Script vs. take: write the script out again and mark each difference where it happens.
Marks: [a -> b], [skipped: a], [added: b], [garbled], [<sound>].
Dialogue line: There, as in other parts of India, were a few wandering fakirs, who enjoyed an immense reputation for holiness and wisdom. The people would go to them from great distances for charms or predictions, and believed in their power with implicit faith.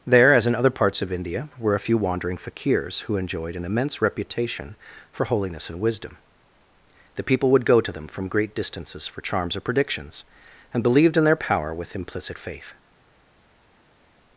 There, as in other parts of India, were a few wandering fakirs, who enjoyed an immense reputation for holiness and wisdom. The people would go to them from great distances for charms or predictions, and believed in their power with implicit faith.